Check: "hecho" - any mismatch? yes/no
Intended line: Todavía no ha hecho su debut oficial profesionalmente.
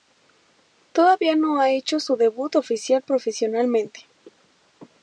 no